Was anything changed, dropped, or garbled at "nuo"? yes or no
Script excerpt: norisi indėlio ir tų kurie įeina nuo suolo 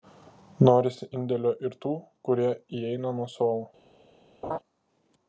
no